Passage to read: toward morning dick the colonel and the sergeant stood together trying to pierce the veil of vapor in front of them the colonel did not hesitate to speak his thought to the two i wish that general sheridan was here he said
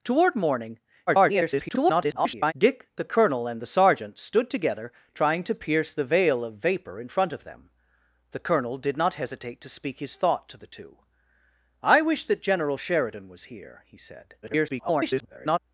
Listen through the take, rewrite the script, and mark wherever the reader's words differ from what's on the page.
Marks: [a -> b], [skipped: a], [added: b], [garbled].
toward morning [garbled] dick the colonel and the sergeant stood together trying to pierce the veil of vapor in front of them the colonel did not hesitate to speak his thought to the two i wish that general sheridan was here he said [garbled]